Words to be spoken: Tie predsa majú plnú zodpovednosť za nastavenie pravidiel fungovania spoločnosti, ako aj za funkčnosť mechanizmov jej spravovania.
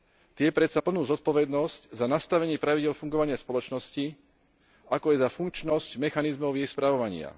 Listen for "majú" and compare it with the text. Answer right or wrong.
wrong